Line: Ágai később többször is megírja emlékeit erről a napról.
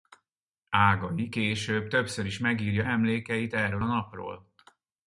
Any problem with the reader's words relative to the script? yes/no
no